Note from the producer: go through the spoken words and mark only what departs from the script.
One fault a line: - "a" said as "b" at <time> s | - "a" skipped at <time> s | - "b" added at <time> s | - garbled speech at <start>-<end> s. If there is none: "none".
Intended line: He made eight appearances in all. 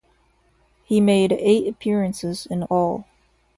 none